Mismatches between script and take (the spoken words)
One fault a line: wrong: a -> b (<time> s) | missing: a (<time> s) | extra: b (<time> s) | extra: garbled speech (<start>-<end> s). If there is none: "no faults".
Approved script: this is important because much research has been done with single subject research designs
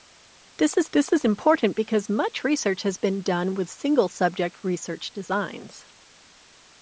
extra: this is (0.9 s)